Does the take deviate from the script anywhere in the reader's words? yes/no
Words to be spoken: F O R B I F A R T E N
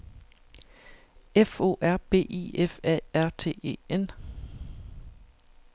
no